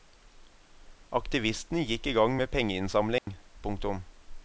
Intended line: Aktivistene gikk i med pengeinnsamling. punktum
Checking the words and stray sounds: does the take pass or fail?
fail